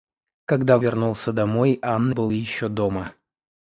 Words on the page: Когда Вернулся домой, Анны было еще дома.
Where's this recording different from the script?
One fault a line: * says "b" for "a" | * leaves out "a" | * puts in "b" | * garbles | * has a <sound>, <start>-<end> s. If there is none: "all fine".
all fine